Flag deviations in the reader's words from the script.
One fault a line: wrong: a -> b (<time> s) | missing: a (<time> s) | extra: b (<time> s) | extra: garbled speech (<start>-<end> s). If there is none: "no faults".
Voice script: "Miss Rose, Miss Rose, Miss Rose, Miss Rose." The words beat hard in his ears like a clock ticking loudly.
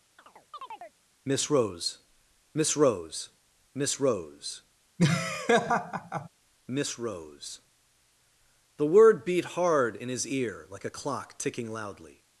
wrong: words -> word (8.9 s)
wrong: ears -> ear (10.3 s)